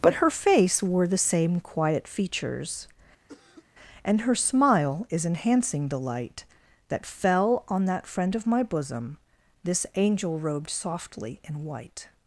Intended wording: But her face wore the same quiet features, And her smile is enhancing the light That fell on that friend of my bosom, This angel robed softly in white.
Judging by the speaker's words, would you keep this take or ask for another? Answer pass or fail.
pass